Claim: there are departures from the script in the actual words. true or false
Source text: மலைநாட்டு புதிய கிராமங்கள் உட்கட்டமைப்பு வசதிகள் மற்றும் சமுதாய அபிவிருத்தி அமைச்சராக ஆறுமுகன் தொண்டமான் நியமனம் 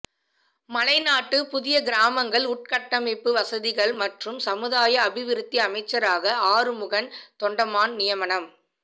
false